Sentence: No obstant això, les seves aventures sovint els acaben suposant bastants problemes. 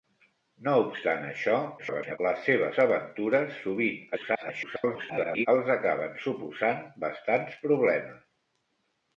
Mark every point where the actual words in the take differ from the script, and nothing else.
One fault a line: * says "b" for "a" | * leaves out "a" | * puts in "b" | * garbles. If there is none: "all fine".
* garbles
* garbles